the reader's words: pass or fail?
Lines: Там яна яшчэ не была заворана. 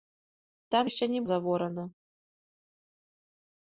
fail